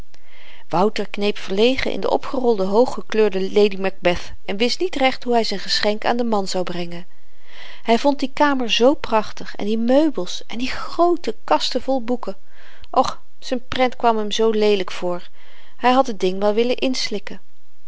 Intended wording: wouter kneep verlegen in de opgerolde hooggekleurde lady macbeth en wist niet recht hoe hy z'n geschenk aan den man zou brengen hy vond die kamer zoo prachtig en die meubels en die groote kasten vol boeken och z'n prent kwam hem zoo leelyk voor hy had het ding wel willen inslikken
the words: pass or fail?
pass